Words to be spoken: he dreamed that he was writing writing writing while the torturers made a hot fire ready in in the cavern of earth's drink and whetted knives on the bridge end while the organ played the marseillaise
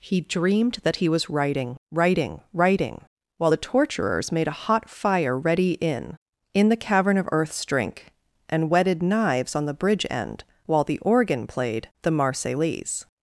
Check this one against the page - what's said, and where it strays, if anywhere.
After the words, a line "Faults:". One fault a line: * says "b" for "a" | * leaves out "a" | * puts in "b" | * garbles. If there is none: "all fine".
he dreamed that he was writing writing writing while the torturers made a hot fire ready in in the cavern of earth's drink and whetted knives on the bridge end while the organ played the marseillaise
Faults:
all fine